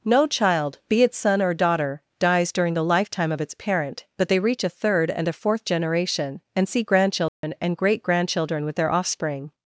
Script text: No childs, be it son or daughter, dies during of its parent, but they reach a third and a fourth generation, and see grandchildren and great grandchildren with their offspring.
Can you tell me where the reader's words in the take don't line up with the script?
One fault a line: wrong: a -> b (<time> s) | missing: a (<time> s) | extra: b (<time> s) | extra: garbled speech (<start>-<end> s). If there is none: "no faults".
wrong: childs -> child (0.2 s)
extra: the lifetime (2.7 s)